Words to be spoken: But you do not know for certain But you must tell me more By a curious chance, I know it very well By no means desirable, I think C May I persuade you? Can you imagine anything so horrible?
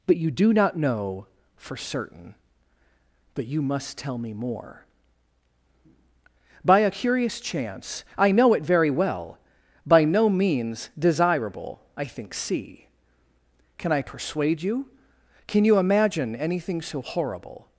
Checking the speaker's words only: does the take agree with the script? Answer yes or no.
no